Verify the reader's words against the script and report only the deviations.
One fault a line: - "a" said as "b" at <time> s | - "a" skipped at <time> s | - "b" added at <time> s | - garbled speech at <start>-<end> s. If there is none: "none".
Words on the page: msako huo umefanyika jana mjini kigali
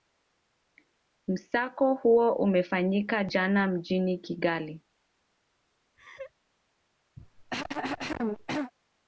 none